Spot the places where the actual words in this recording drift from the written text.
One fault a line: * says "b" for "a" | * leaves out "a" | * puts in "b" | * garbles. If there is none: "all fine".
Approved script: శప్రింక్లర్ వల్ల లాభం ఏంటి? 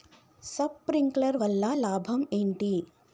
all fine